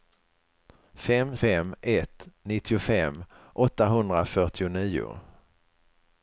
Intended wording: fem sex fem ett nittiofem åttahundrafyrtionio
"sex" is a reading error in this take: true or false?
true